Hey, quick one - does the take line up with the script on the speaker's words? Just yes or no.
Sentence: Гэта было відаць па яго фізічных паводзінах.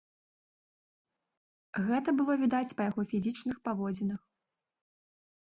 yes